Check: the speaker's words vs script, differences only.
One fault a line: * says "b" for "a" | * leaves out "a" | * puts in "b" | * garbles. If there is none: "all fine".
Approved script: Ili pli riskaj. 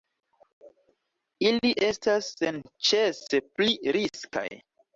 * puts in "estas senĉese"